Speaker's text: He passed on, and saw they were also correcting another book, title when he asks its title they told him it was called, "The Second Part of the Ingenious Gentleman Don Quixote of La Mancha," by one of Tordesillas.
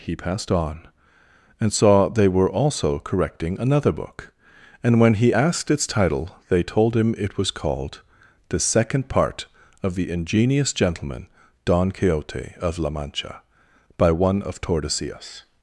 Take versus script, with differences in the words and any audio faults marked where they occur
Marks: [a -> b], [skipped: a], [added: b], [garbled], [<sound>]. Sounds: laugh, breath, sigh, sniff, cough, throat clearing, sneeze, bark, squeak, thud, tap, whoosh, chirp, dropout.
He passed on, and saw they were also correcting another book, [title -> and] when he [asks -> asked] its title they told him it was called, "The Second Part of the Ingenious Gentleman Don Quixote of La Mancha," by one of Tordesillas.